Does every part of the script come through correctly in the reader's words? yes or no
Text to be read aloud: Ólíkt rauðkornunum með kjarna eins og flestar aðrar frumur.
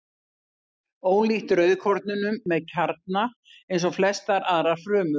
yes